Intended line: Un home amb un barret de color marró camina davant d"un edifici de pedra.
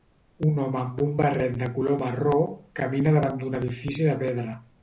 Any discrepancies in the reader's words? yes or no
no